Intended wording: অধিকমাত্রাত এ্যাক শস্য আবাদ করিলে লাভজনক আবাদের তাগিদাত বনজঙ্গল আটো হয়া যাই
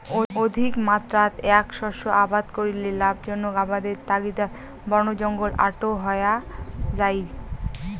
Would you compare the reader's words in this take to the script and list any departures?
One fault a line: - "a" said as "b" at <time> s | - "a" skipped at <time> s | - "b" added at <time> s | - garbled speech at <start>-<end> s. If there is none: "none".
none